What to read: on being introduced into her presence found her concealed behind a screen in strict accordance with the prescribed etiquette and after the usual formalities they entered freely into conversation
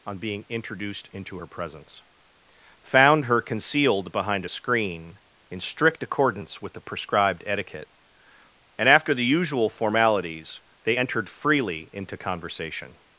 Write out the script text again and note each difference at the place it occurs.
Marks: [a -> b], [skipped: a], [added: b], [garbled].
on being introduced into her presence found her concealed behind a screen in strict accordance with the prescribed etiquette and after the usual formalities they entered freely into conversation